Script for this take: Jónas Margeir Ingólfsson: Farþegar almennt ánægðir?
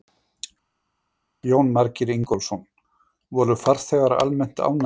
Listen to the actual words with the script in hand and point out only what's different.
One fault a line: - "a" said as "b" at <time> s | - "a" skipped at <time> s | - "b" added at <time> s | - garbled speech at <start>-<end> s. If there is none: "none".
- "Voru" added at 3.4 s